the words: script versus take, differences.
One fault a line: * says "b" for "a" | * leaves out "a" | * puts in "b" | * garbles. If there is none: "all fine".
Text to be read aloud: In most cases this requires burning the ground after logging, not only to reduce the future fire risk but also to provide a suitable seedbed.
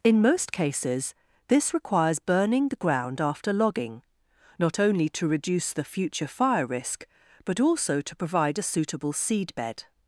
all fine